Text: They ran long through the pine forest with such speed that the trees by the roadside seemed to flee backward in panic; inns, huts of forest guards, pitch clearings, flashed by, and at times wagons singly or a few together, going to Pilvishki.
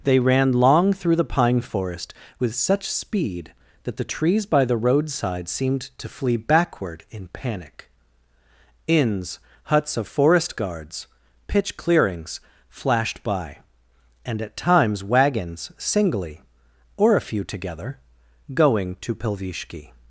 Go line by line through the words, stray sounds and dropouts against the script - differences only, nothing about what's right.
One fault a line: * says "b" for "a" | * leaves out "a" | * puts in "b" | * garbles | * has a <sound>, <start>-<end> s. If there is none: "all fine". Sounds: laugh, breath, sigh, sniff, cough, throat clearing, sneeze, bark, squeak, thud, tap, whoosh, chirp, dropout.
all fine